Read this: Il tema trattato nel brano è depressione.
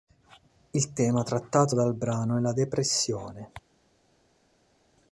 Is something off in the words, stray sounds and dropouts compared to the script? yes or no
yes